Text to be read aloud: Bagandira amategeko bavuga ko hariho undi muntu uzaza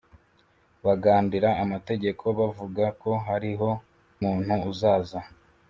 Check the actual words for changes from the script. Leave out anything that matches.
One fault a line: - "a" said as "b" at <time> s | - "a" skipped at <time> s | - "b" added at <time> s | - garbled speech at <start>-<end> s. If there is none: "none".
- "undi" skipped at 3.7 s